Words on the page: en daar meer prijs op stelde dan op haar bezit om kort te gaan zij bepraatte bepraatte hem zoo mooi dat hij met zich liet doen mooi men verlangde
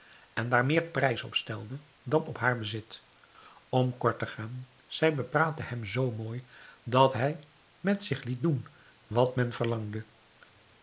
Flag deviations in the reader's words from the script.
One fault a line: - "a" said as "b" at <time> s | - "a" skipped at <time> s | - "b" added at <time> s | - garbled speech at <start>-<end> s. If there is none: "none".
- "bepraatte" skipped at 5.6 s
- "mooi" said as "wat" at 9.1 s